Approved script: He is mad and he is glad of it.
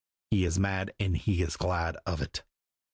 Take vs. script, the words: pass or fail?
pass